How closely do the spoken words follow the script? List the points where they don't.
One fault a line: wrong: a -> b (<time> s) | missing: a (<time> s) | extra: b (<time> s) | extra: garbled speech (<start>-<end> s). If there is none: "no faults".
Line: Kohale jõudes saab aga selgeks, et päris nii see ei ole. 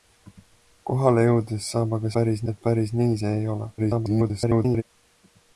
wrong: selgeks -> päris (2.2 s)
extra: garbled speech (3.8-4.8 s)